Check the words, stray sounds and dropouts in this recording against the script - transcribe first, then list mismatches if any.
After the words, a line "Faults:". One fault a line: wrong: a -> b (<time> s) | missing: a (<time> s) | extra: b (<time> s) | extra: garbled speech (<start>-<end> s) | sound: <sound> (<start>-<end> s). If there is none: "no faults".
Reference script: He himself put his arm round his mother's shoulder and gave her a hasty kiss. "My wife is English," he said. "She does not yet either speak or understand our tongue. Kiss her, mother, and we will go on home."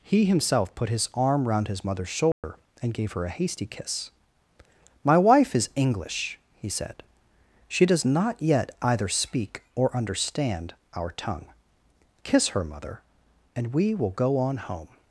He himself put his arm round his mother's shoulder and gave her a hasty kiss. "My wife is English," he said. "She does not yet either speak or understand our tongue. Kiss her, mother, and we will go on home."
Faults:
sound: dropout (2.3-2.4 s)